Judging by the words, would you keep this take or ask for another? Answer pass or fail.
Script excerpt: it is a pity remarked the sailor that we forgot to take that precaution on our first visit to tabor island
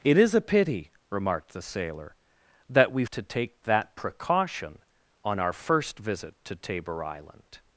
fail